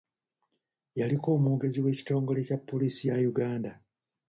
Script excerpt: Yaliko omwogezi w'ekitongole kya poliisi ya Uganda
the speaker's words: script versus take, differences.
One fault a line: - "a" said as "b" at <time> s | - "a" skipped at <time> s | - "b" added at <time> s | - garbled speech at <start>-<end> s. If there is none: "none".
none